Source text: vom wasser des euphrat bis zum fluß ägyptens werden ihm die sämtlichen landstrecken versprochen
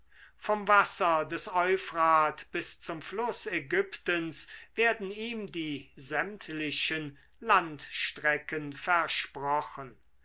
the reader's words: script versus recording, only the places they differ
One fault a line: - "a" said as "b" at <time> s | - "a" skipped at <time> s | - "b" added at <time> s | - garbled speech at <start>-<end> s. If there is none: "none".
none